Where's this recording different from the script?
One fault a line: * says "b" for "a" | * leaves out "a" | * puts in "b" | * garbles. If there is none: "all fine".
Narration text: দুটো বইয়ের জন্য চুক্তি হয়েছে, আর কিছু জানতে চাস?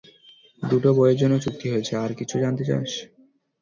all fine